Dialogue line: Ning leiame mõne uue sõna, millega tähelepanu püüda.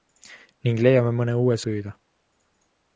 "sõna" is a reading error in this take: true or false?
true